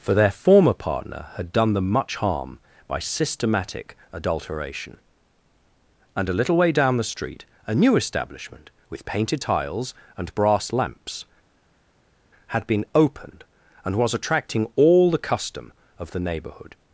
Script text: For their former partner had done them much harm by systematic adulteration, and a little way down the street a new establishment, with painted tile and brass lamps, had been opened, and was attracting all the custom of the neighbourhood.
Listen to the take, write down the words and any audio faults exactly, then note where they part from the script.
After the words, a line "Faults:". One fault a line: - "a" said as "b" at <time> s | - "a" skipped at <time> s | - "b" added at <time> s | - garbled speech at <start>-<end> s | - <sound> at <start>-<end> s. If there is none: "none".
For their former partner had done them much harm by systematic adulteration, and a little way down the street a new establishment, with painted tiles and brass lamps, had been opened, and was attracting all the custom of the neighbourhood.
Faults:
- "tile" said as "tiles" at 9.4 s